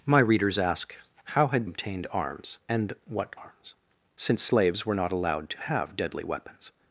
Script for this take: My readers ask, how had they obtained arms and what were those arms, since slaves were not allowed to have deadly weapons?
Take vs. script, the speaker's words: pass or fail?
fail